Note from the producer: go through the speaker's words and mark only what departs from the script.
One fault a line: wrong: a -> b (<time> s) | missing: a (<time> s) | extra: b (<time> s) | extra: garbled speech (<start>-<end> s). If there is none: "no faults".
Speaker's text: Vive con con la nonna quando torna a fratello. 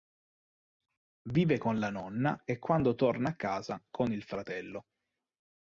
missing: con (1.8 s)
extra: e (2.4 s)
extra: casa con il (3.4 s)